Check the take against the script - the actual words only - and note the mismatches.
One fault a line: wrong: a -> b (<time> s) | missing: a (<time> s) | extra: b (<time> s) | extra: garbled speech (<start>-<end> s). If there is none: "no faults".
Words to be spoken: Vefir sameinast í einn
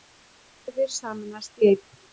no faults